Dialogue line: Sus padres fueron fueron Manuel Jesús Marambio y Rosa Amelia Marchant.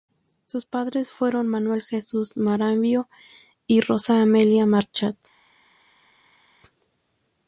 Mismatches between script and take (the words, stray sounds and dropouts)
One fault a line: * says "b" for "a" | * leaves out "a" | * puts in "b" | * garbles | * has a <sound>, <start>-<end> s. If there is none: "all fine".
* leaves out "fueron"